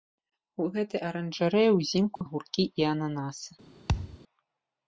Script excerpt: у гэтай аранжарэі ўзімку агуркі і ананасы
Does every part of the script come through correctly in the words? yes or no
yes